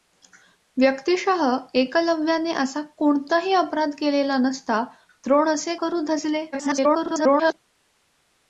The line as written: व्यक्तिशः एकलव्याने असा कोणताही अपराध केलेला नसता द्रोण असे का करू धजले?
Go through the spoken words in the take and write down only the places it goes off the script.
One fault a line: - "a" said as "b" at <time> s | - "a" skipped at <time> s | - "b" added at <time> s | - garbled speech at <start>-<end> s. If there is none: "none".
- "का" skipped at 5.8 s
- garbled speech at 6.5-7.5 s